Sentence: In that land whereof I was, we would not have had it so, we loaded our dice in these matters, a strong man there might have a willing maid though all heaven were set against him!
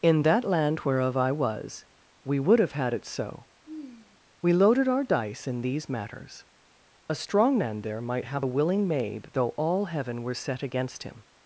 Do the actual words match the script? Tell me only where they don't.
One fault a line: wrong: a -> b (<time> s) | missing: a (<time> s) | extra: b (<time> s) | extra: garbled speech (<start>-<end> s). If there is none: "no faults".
missing: not (2.6 s)